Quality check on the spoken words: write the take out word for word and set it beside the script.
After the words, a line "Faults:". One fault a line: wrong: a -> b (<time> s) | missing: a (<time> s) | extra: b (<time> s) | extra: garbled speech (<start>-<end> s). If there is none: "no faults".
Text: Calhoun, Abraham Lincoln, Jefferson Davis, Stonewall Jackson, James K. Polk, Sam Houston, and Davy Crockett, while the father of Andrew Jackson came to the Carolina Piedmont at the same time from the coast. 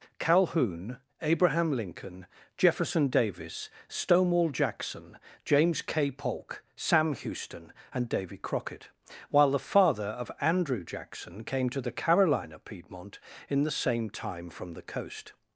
Calhoun, Abraham Lincoln, Jefferson Davis, Stonewall Jackson, James K. Polk, Sam Houston, and Davy Crockett, while the father of Andrew Jackson came to the Carolina Piedmont in the same time from the coast.
Faults:
wrong: at -> in (13.5 s)